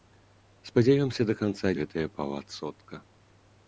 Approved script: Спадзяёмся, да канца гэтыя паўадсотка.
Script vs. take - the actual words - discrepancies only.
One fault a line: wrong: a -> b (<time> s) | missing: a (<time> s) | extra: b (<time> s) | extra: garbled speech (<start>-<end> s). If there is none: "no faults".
no faults